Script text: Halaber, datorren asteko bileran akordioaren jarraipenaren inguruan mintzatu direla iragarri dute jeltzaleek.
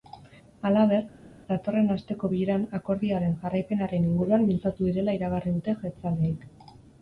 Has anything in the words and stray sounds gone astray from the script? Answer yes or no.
no